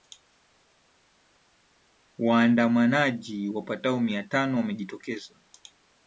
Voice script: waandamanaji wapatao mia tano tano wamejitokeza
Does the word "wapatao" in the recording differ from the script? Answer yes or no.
no